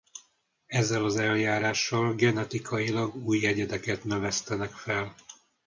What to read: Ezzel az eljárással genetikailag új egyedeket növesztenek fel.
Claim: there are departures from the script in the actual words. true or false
false